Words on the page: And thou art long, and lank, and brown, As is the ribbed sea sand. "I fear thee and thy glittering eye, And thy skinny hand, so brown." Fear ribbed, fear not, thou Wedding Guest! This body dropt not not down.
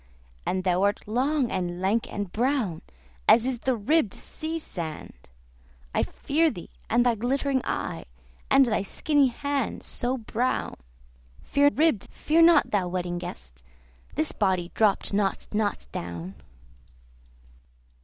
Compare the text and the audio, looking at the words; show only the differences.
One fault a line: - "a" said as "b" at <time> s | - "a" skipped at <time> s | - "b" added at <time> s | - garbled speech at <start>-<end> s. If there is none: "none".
none